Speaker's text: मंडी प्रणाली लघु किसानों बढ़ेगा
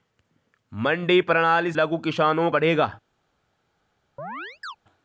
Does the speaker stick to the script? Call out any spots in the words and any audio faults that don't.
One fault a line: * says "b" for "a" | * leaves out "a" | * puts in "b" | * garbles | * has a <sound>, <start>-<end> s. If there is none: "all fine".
* has a chirp, 4.2-4.8 s